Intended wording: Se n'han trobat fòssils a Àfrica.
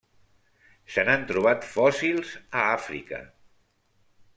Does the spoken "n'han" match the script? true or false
true